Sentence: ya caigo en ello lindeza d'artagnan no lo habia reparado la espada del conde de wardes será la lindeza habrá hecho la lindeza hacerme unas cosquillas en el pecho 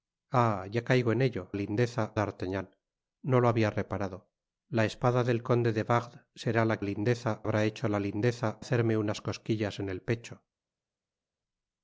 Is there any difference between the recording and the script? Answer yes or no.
no